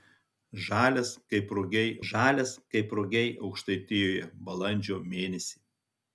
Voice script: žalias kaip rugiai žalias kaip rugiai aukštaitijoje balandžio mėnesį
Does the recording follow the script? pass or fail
pass